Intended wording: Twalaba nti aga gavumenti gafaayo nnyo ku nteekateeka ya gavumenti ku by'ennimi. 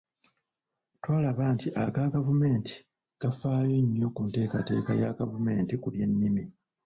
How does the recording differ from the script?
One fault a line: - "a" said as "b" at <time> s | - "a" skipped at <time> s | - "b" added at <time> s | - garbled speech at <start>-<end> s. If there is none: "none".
none